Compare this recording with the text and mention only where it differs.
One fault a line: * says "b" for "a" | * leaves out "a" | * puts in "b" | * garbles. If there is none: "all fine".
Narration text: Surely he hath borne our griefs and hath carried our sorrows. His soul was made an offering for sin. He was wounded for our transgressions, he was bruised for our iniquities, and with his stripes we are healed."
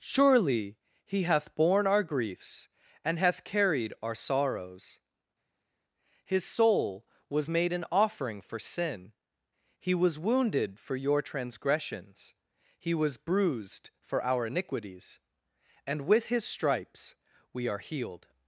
* says "your" for "our"